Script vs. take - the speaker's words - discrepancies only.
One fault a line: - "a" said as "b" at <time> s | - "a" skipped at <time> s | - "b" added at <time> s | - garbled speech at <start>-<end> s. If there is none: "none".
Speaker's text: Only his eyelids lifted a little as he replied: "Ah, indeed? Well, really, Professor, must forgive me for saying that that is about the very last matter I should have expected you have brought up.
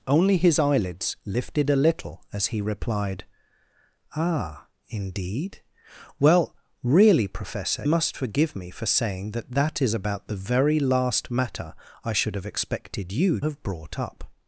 none